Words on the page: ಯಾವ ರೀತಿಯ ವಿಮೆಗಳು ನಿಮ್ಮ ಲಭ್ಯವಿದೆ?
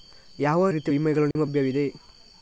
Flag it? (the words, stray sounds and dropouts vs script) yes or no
yes